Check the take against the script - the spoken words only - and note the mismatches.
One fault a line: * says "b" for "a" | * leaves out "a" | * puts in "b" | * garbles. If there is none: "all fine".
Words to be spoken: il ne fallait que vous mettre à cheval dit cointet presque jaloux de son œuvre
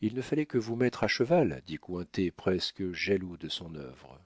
all fine